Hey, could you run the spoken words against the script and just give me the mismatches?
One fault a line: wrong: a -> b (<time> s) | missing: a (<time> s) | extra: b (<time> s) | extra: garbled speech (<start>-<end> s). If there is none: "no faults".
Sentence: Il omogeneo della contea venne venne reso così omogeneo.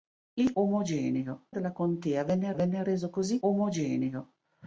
no faults